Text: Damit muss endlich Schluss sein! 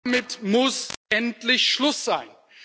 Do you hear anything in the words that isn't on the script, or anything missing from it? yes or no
no